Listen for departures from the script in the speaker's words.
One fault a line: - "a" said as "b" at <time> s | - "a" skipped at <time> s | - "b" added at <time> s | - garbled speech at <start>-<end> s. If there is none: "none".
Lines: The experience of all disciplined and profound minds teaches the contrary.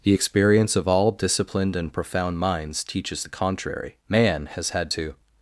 - "Man has had to" added at 4.1 s